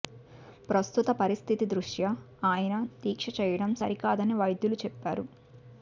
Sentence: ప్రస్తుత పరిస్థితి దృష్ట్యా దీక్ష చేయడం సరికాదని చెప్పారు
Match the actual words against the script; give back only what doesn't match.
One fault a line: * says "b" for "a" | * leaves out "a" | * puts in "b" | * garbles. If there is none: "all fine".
* puts in "ఆయన"
* puts in "వైద్యులు"